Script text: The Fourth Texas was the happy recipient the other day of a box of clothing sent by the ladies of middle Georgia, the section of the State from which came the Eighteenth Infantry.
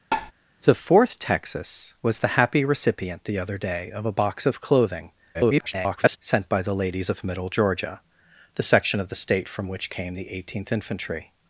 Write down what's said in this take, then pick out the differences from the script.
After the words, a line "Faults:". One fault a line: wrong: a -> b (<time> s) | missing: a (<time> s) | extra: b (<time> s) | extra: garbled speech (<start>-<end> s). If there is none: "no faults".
The Fourth Texas was the happy recipient the other day of a box of clothing [garbled] sent by the ladies of middle Georgia, the section of the State from which came the Eighteenth Infantry.
Faults:
extra: garbled speech (5.3-6.2 s)